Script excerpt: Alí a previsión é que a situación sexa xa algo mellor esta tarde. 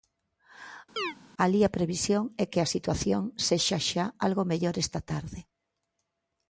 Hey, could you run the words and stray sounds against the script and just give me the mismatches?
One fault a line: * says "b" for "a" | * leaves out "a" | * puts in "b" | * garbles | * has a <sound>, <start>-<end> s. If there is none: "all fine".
* has a chirp, 1.0-1.1 s